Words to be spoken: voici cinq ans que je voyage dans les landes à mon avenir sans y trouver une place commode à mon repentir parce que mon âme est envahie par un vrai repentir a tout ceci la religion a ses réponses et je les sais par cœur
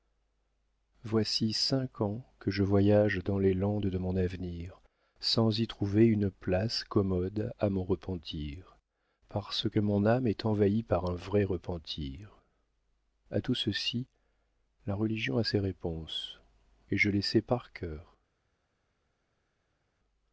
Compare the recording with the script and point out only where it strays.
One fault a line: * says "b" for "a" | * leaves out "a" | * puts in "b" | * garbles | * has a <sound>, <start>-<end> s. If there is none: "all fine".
* says "de" for "à"